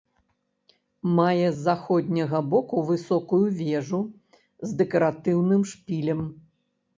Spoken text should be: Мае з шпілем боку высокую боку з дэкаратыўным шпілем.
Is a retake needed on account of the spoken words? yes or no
yes